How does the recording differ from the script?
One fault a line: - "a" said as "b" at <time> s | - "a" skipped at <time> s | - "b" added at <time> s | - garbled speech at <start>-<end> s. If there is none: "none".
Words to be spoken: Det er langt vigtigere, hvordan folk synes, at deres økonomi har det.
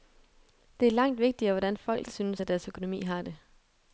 none